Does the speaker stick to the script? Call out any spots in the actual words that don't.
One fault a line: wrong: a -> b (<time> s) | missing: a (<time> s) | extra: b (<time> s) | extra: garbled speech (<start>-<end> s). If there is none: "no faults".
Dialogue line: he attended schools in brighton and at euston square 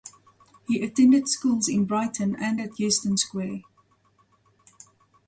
no faults